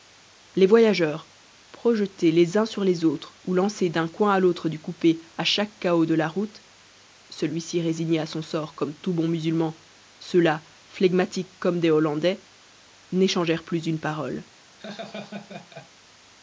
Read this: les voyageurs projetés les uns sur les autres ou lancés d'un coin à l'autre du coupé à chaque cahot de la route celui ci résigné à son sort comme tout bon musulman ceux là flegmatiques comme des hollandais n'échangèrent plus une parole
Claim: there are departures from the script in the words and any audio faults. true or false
true